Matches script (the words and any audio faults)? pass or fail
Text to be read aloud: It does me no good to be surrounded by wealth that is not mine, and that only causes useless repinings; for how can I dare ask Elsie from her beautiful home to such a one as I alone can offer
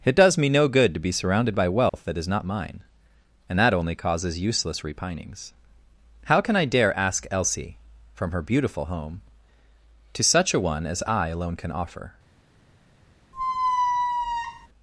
fail